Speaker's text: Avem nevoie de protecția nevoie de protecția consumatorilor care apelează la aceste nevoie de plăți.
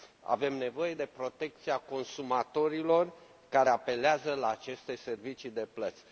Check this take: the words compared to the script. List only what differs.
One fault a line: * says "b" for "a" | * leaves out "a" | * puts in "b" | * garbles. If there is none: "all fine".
* leaves out "nevoie de protecția"
* says "servicii" for "nevoie"